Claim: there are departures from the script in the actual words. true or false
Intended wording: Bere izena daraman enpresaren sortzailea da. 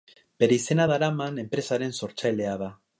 false